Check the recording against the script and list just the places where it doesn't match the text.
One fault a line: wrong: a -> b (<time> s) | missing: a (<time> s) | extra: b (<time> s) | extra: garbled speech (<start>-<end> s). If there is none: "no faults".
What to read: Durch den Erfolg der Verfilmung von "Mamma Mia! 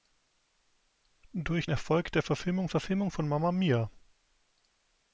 missing: den (1.7 s)
extra: Verfilmung (2.7 s)